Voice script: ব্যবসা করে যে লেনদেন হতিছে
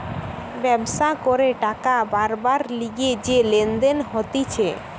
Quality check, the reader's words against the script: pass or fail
fail